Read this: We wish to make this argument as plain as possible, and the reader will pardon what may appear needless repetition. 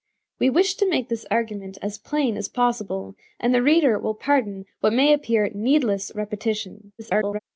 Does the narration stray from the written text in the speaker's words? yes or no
yes